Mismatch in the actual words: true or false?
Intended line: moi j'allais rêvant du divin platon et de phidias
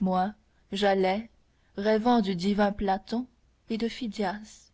false